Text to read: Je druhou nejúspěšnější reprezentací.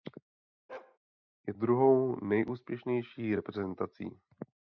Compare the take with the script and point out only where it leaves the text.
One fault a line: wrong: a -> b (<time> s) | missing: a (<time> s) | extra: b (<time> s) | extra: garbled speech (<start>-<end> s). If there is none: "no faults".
no faults